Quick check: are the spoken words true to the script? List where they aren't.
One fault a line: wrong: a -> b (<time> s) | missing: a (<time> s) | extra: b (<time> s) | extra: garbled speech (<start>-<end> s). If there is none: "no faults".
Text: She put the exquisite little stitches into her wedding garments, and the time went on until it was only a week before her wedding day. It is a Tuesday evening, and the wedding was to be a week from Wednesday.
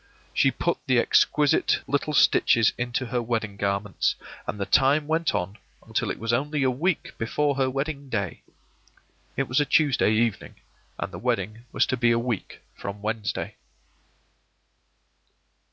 wrong: is -> was (9.5 s)